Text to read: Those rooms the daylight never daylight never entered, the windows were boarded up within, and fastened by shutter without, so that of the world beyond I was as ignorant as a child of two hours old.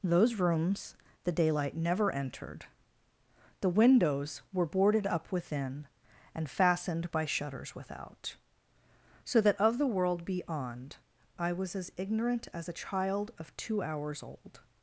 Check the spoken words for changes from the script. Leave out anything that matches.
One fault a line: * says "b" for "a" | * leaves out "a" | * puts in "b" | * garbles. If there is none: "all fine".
* leaves out "daylight never"
* says "shutters" for "shutter"